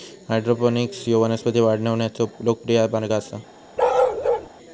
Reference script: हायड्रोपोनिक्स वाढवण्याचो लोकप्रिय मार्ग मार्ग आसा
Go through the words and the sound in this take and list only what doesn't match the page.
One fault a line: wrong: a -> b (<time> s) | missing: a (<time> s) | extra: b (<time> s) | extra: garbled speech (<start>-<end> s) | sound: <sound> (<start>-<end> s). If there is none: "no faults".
extra: ह्यो वनस्पती (1.1 s)
missing: मार्ग (3.1 s)
sound: bark (3.8-4.5 s)